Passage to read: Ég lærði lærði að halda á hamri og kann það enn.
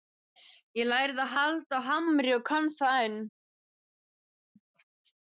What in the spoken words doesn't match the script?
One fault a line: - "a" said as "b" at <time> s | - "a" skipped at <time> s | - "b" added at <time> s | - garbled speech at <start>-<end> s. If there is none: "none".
- "lærði" skipped at 1.2 s